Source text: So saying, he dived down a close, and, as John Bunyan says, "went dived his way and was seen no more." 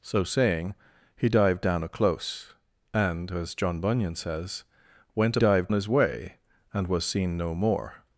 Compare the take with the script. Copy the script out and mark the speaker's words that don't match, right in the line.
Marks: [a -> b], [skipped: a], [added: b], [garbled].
So saying, he dived down a close, and, as John Bunyan says, "went dived his way and was seen no more."